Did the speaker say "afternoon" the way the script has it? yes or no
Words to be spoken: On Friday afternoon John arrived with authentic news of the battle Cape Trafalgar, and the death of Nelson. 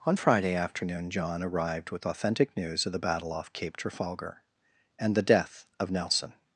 yes